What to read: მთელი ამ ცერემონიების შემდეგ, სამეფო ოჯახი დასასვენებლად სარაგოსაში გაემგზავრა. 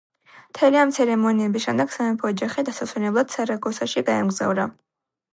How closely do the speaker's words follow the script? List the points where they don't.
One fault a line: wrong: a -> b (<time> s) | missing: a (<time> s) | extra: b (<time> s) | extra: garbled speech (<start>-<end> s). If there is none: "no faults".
no faults